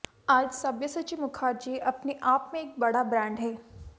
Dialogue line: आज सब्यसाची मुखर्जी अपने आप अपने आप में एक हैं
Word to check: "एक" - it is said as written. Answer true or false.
false